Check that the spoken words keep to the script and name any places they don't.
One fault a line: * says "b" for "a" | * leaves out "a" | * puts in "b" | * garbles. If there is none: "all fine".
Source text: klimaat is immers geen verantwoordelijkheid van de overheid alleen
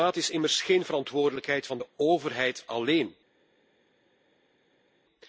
all fine